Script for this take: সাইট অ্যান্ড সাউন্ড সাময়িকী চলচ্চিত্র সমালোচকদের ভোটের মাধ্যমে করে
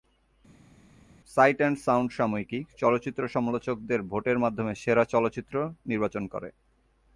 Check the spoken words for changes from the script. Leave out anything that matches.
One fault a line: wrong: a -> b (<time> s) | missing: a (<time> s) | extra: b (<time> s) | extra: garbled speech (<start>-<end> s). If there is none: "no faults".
extra: সেরা চলচ্চিত্র নির্বাচন (4.7 s)